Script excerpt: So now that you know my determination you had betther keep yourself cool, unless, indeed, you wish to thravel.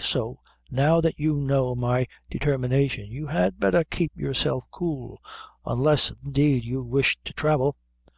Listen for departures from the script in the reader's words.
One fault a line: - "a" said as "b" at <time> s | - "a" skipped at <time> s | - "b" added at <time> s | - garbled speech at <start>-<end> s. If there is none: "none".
none